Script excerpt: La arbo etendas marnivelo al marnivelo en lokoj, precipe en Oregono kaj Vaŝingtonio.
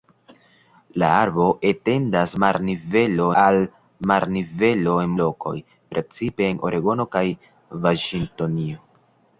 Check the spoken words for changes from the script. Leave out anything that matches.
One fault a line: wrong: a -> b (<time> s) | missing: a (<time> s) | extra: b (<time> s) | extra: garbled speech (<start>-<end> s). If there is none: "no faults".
no faults